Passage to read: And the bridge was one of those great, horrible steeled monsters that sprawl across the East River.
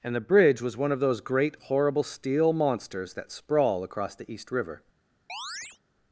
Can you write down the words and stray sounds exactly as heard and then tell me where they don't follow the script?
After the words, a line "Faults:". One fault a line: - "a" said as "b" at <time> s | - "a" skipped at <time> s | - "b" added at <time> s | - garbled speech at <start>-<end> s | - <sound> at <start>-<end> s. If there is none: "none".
And the bridge was one of those great, horrible steel monsters that sprawl across the East River.
Faults:
- "steeled" said as "steel" at 2.0 s
- chirp at 5.3-5.8 s